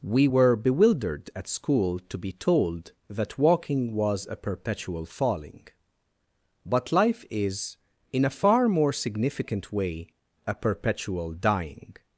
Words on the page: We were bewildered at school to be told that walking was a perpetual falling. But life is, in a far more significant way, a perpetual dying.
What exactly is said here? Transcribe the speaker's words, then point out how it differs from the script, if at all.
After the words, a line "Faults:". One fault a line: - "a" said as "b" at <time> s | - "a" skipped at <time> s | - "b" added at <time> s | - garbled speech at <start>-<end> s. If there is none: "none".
We were bewildered at school to be told that walking was a perpetual falling. But life is, in a far more significant way, a perpetual dying.
Faults:
none